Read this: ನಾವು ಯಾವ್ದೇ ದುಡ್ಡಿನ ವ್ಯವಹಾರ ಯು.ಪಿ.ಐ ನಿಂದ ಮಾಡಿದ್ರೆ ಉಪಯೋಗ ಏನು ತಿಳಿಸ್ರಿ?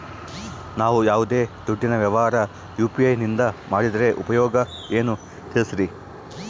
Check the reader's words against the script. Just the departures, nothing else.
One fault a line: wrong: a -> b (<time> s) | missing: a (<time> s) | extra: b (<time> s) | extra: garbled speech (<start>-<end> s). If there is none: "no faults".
no faults